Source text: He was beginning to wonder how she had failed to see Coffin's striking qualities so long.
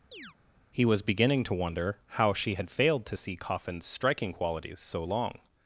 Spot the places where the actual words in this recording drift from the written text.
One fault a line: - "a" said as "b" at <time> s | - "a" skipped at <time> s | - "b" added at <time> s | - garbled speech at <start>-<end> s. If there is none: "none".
none